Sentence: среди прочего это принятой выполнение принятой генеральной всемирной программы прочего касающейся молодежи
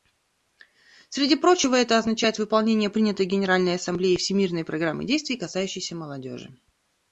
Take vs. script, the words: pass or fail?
fail